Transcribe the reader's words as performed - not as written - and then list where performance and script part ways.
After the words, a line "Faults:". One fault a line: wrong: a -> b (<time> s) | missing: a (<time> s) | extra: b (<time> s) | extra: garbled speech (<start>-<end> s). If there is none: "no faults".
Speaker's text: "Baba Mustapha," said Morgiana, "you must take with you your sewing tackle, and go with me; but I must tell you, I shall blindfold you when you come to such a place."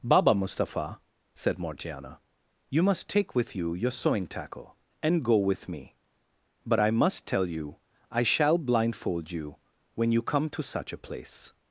"Baba Mustapha," said Morgiana, "you must take with you your sewing tackle, and go with me; but I must tell you, I shall blindfold you when you come to such a place."
Faults:
no faults